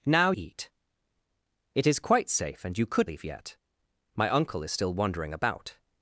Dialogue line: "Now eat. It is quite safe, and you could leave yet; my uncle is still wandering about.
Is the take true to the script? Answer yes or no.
yes